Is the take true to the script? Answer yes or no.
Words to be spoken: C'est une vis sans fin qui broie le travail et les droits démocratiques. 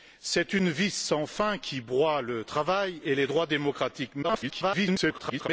no